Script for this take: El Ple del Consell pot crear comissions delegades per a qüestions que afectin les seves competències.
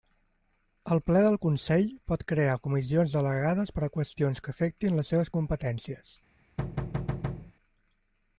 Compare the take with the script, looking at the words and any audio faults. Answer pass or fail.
fail